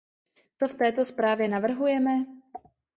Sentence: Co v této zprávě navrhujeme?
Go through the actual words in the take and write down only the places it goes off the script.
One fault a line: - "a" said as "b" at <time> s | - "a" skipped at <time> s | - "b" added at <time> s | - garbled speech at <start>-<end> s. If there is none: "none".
none